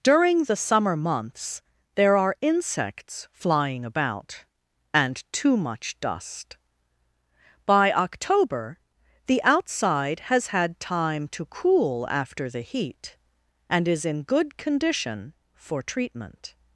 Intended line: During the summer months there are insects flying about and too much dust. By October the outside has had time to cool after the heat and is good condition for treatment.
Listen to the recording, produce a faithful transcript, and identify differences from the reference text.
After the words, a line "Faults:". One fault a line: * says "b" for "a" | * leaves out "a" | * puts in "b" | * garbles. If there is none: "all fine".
During the summer months there are insects flying about and too much dust. By October the outside has had time to cool after the heat and is in good condition for treatment.
Faults:
* puts in "in"